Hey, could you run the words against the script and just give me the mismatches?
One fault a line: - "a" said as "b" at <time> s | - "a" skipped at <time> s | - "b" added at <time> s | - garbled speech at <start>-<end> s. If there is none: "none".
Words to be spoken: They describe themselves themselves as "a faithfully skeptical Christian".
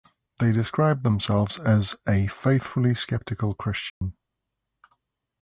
- "themselves" skipped at 1.6 s